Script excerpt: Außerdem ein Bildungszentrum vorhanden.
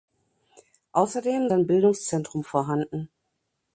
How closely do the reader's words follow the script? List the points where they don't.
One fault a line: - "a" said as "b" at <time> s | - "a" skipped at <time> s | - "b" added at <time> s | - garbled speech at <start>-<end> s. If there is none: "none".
none